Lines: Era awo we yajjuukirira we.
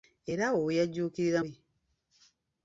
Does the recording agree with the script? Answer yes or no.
yes